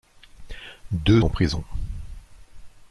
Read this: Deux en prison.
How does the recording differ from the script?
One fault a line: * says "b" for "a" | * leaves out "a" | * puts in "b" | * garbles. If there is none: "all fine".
all fine